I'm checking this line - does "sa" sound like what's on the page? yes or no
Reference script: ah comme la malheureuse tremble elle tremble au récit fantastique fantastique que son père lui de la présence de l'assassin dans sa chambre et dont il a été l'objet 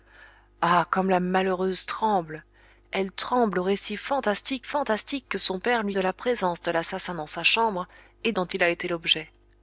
yes